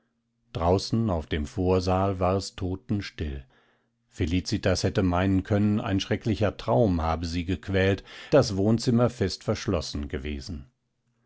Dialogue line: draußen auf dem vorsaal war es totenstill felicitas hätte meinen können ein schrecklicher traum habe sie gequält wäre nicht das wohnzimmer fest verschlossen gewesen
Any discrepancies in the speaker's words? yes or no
yes